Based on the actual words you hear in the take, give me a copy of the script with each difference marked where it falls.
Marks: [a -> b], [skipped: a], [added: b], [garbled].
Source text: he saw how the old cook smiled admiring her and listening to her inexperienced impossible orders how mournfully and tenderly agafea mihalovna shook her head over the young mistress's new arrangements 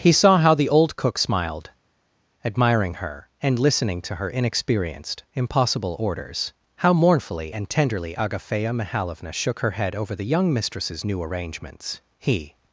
he saw how the old cook smiled admiring her and listening to her inexperienced impossible orders how mournfully and tenderly agafea mihalovna shook her head over the young mistress's new arrangements [added: he]